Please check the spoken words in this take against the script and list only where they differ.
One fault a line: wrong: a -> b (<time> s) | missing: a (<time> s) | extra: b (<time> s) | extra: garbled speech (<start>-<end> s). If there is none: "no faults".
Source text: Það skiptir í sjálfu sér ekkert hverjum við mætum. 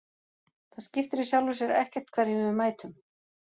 no faults